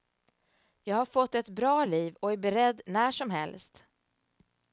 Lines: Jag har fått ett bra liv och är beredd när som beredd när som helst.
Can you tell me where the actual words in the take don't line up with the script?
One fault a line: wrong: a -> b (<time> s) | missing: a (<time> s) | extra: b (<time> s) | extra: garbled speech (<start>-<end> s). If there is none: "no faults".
missing: beredd när som (3.3 s)